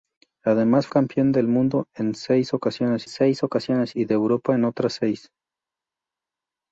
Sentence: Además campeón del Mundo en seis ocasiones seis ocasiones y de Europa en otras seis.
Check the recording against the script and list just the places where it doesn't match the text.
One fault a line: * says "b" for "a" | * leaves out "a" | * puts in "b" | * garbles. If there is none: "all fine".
all fine